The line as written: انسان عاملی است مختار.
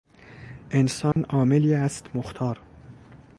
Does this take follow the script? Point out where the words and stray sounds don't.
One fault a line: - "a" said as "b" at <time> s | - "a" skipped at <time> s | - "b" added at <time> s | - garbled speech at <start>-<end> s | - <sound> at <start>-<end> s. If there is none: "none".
- dropout at 1.1-1.2 s